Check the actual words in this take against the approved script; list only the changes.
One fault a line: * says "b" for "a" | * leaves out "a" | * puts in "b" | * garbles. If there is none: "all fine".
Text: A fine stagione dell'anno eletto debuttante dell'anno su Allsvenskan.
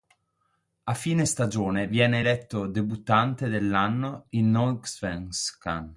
* says "viene" for "dell'anno"
* says "in" for "su"